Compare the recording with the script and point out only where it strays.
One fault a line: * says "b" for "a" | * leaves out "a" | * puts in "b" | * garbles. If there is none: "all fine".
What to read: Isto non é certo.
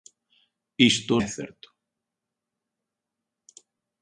* leaves out "non"